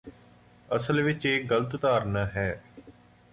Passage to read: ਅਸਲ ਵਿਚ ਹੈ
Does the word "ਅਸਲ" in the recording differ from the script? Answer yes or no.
no